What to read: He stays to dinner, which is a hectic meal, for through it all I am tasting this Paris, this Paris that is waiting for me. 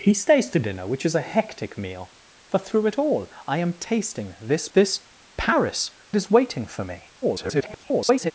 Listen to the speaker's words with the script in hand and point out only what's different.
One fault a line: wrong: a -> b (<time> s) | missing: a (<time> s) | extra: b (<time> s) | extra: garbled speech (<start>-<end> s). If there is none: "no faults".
missing: Paris (4.7 s)
missing: that (5.9 s)
extra: garbled speech (7.2-8.3 s)